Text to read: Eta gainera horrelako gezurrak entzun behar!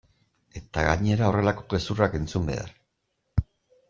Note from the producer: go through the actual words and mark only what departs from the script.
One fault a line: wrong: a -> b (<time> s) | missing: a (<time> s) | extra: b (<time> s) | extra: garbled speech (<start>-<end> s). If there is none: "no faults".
no faults